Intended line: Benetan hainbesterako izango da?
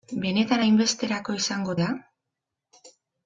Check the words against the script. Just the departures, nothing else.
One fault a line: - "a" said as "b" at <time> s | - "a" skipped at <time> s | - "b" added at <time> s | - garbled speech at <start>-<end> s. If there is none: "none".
none